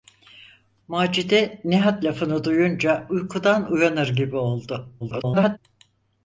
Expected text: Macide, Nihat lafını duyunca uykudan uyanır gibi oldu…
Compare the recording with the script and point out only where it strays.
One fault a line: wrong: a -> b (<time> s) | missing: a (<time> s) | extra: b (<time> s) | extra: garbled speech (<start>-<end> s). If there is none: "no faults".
extra: garbled speech (5.0-5.6 s)